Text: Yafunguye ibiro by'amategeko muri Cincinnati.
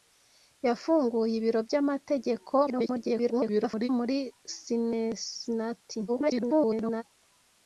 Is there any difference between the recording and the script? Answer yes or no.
yes